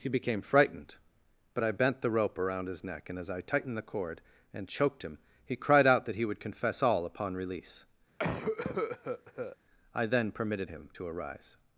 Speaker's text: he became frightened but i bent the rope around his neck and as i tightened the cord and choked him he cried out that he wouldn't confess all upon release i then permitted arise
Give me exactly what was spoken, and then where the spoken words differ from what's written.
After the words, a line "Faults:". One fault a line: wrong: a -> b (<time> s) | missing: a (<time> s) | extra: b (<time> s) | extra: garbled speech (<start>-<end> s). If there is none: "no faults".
he became frightened but i bent the rope around his neck and as i tightened the cord and choked him he cried out that he would confess all upon release i then permitted him to arise
Faults:
wrong: wouldn't -> would (6.2 s)
extra: him to (10.7 s)